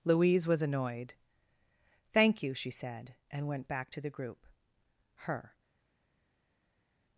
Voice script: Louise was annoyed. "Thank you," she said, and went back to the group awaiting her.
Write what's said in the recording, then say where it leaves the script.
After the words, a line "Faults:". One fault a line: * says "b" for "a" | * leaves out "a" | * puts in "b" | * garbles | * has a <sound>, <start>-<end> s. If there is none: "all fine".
Louise was annoyed. "Thank you," she said, and went back to the group her.
Faults:
* leaves out "awaiting"